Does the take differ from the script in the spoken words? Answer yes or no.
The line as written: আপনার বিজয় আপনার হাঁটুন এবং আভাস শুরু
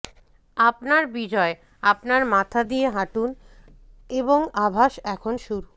yes